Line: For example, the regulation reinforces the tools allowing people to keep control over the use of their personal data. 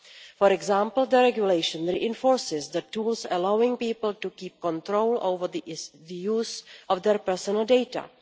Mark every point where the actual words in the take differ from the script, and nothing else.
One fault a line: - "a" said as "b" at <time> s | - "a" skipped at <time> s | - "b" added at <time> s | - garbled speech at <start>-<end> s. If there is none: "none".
none